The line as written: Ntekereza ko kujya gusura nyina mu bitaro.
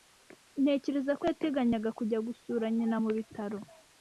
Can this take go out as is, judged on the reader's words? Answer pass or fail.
fail